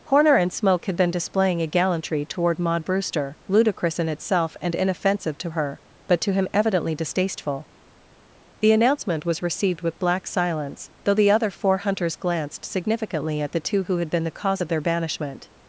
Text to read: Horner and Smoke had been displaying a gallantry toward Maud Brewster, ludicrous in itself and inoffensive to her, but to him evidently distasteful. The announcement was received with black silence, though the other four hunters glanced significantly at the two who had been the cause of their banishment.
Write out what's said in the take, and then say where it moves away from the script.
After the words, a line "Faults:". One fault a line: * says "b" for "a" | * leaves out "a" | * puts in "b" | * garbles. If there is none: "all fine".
Horner and Smoke had been displaying a gallantry toward Maud Brewster, ludicrous in itself and inoffensive to her, but to him evidently distasteful. The announcement was received with black silence, though the other four hunters glanced significantly at the two who had been the cause of their banishment.
Faults:
all fine